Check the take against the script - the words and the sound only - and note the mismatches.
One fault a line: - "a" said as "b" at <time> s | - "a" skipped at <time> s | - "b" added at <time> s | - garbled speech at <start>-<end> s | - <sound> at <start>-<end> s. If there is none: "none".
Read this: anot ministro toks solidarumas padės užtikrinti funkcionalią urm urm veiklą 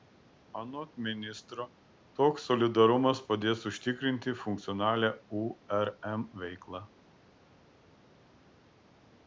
- "urm" skipped at 6.2 s